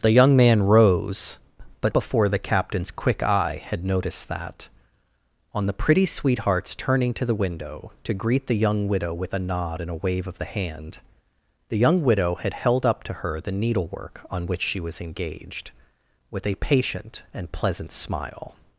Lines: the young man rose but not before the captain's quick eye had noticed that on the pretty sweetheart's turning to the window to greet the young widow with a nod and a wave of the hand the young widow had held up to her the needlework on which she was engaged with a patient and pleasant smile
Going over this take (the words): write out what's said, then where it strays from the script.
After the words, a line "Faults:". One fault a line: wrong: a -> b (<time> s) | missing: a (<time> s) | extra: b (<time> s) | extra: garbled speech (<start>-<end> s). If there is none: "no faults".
the young man rose but before the captain's quick eye had noticed that on the pretty sweetheart's turning to the window to greet the young widow with a nod and a wave of the hand the young widow had held up to her the needlework on which she was engaged with a patient and pleasant smile
Faults:
missing: not (1.9 s)